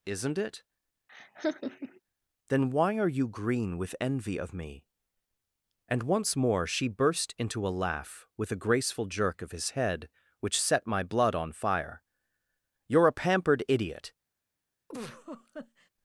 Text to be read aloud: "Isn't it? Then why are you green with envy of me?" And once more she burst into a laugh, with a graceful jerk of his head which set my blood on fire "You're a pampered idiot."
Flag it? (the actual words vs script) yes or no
no